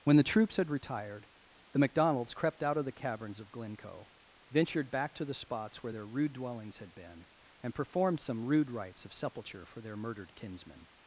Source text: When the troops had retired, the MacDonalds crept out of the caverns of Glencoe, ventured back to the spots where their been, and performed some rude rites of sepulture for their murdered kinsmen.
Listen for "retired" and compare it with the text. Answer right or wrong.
right